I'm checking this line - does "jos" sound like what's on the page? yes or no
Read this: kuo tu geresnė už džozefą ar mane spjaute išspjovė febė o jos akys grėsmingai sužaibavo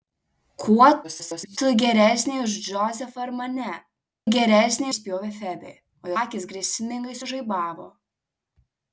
no